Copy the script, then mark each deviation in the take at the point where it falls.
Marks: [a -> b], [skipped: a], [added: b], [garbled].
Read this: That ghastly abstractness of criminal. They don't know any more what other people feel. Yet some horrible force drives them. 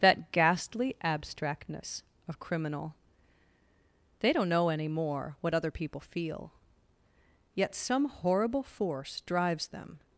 That ghastly abstractness of criminal. They don't know any more what other people feel. Yet some horrible force drives them.